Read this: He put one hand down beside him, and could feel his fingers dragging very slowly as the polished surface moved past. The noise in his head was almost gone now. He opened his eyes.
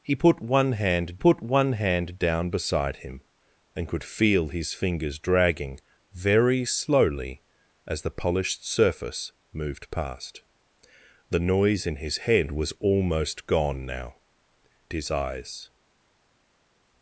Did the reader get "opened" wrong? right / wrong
wrong